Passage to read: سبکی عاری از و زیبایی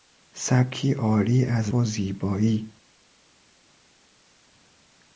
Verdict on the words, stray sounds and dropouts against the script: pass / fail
pass